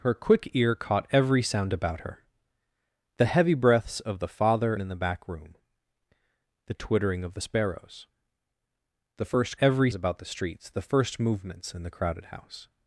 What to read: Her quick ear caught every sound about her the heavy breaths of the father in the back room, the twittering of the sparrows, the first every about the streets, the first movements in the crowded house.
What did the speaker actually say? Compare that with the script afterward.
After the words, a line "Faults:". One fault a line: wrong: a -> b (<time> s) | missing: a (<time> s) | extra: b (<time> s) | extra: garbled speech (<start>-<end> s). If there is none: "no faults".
Her quick ear caught every sound about her the heavy breaths of the father in the back room, the twittering of the sparrows, the first every about the streets, the first movements in the crowded house.
Faults:
no faults